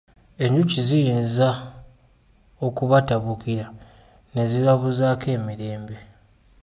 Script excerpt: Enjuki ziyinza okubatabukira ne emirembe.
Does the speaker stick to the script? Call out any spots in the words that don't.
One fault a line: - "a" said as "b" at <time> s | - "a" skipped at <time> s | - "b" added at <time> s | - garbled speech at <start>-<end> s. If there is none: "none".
- "zibabuzaako" added at 4.5 s